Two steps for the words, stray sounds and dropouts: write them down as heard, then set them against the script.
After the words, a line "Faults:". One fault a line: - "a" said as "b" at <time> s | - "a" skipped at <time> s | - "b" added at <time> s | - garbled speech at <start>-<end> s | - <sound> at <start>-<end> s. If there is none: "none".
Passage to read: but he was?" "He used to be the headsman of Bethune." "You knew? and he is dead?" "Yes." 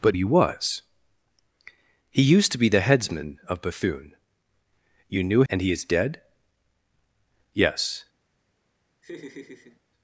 but he was?" "He used to be the headsman of Bethune." "You knew? and he is dead?" "Yes."
Faults:
- laugh at 9.0-9.8 s